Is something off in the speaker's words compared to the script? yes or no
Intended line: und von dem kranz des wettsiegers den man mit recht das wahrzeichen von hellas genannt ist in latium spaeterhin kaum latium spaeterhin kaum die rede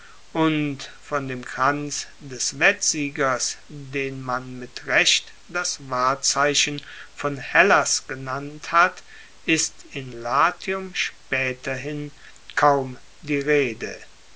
yes